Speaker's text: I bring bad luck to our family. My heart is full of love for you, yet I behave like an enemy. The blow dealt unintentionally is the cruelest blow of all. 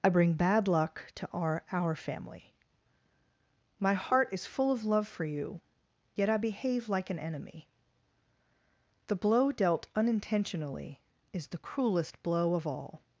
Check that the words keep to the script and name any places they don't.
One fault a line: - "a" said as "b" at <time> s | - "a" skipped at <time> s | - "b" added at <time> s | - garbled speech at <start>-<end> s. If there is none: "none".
- "our" added at 1.7 s